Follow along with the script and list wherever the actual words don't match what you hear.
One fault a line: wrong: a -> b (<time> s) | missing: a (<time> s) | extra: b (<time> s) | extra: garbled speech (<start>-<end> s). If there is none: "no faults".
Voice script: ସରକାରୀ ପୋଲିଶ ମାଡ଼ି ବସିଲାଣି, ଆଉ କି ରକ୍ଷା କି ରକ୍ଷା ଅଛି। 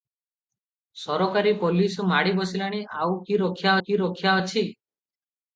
no faults